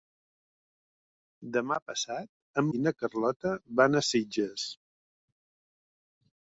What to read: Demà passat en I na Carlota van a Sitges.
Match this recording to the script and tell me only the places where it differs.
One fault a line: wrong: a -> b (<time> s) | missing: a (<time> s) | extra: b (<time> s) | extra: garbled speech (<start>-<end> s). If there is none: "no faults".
no faults